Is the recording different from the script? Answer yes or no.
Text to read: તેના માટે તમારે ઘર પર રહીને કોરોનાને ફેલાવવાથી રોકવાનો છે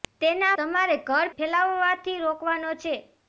yes